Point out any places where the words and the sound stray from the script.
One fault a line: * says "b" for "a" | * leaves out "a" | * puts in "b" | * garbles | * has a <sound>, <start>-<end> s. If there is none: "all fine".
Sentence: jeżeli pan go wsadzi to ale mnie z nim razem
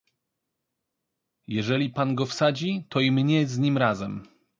* says "i" for "ale"